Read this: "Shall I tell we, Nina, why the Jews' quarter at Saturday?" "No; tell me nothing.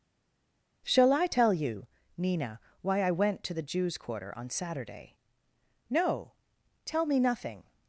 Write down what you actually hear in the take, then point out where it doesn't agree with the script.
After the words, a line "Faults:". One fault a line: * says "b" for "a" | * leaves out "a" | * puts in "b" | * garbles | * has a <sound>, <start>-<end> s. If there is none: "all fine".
"Shall I tell you, Nina, why I went to the Jews' quarter on Saturday?" "No; tell me nothing.
Faults:
* says "you" for "we"
* puts in "I went to"
* says "on" for "at"